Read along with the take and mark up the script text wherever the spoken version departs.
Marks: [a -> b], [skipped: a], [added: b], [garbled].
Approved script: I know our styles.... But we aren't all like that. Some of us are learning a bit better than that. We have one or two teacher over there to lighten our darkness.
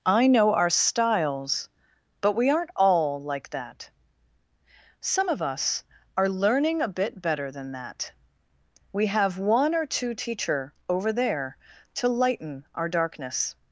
I know our styles.... But we aren't all like that. Some of us are learning a bit better than that. We have one or two teacher over there to lighten our darkness.